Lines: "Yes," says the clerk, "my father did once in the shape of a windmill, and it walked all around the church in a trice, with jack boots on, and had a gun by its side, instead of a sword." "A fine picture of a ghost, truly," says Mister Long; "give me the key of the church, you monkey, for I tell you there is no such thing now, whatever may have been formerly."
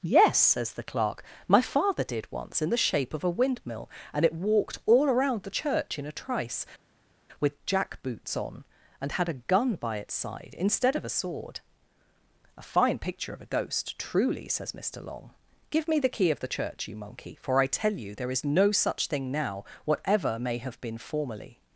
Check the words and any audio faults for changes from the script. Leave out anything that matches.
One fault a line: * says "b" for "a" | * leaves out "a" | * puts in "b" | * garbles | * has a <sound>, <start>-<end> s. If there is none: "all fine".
all fine